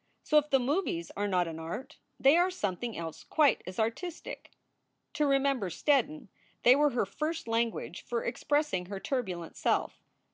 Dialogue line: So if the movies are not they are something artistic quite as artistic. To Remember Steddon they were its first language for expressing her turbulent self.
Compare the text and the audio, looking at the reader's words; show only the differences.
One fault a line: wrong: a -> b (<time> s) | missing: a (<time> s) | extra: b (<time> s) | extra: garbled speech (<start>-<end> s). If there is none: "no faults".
extra: an art (1.5 s)
wrong: artistic -> else (3.0 s)
wrong: its -> her (6.9 s)